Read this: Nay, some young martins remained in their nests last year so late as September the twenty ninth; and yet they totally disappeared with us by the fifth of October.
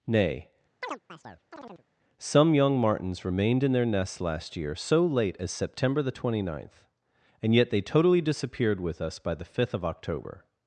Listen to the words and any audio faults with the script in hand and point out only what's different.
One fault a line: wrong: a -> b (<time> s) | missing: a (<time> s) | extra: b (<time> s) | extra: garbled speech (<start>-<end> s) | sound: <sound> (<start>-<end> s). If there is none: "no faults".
sound: chirp (0.8-1.8 s)